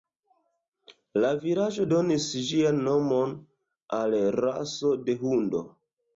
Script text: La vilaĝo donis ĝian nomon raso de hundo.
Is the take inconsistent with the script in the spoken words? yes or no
yes